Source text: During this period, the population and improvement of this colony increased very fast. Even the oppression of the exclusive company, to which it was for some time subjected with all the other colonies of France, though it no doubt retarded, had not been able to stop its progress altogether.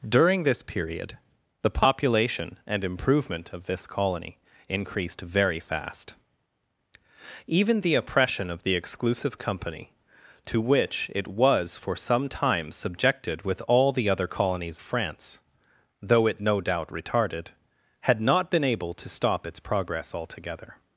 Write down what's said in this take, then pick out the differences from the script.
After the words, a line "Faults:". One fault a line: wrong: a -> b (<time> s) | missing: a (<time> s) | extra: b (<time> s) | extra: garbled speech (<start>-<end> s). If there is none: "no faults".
During this period, the population and improvement of this colony increased very fast. Even the oppression of the exclusive company, to which it was for some time subjected with all the other colonies France, though it no doubt retarded, had not been able to stop its progress altogether.
Faults:
missing: of (14.8 s)